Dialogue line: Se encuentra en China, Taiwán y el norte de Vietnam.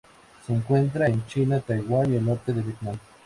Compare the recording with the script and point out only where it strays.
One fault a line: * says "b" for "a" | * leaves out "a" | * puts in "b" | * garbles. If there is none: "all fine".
all fine